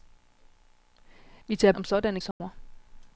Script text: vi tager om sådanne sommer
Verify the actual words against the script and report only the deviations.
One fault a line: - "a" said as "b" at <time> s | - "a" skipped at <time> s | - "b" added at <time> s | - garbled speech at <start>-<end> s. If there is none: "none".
none